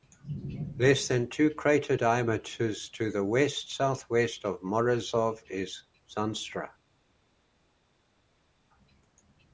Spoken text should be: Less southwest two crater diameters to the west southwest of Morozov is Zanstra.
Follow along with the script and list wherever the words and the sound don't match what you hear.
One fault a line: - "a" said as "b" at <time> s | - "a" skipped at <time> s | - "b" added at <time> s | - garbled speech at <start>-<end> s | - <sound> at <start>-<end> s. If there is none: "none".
- "southwest" said as "than" at 1.1 s